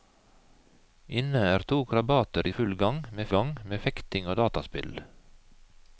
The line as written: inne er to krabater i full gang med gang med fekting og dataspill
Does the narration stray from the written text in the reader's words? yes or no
no